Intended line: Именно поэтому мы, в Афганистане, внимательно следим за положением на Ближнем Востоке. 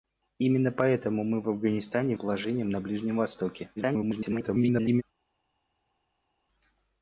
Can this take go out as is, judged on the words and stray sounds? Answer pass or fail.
fail